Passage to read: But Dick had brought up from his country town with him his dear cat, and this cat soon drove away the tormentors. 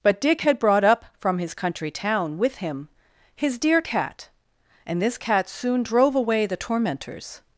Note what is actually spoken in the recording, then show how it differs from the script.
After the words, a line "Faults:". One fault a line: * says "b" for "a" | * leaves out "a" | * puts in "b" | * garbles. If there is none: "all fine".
But Dick had brought up from his country town with him his dear cat, and this cat soon drove away the tormentors.
Faults:
all fine